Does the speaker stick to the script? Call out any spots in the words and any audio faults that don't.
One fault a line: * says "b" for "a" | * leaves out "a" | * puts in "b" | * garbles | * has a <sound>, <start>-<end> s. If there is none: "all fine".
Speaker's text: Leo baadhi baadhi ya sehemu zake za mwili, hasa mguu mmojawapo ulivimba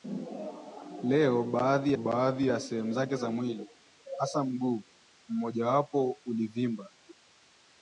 all fine